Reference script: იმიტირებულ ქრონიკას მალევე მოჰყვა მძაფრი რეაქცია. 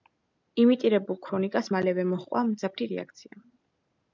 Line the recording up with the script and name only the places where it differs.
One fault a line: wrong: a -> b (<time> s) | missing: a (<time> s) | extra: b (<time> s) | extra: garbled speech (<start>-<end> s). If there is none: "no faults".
no faults